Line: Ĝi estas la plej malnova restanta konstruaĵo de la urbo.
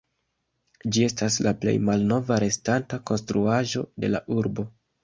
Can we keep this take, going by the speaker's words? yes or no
yes